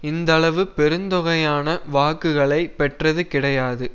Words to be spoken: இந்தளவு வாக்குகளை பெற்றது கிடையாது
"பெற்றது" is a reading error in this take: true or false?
false